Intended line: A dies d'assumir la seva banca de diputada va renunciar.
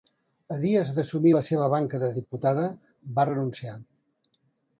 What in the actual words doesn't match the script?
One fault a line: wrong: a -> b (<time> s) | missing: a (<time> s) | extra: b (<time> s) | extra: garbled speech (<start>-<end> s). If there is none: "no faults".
no faults